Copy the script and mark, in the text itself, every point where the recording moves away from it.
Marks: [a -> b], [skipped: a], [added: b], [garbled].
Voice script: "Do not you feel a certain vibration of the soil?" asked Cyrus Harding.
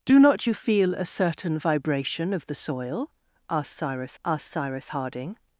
"Do not you feel a certain vibration of the soil?" asked Cyrus [added: asked Cyrus] Harding.